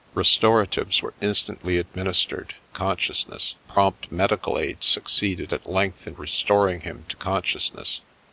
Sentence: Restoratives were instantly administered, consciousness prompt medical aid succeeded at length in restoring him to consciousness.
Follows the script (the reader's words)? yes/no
yes